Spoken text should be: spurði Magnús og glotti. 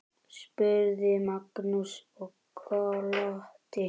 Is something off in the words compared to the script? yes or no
no